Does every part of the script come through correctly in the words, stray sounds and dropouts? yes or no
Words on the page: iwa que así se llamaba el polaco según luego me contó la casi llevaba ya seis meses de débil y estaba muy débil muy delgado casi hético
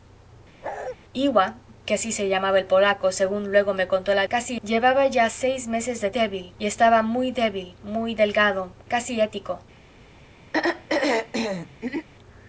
no